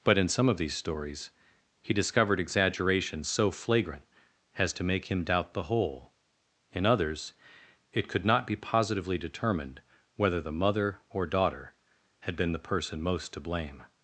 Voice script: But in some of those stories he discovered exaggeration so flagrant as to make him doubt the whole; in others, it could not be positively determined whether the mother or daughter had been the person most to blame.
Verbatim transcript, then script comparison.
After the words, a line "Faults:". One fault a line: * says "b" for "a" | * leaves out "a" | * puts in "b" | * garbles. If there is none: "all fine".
But in some of these stories he discovered exaggeration so flagrant as to make him doubt the whole; in others, it could not be positively determined whether the mother or daughter had been the person most to blame.
Faults:
* says "these" for "those"